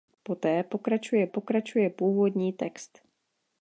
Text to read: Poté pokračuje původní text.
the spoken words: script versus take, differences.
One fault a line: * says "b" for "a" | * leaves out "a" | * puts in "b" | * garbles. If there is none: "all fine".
* puts in "pokračuje"